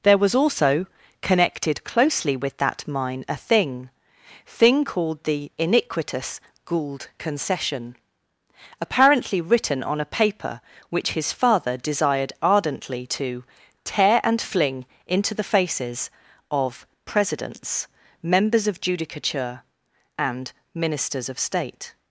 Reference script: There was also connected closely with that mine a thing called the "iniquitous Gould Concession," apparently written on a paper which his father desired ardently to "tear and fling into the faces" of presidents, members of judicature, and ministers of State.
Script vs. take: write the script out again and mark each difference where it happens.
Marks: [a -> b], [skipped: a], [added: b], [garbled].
There was also connected closely with that mine a thing [added: thing] called the "iniquitous Gould Concession," apparently written on a paper which his father desired ardently to "tear and fling into the faces" of presidents, members of judicature, and ministers of State.